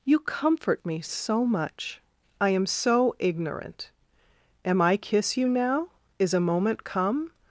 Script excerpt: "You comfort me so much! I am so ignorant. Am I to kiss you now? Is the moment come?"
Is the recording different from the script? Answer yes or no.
yes